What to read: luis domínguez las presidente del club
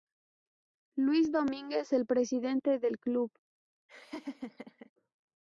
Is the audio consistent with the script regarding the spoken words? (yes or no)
no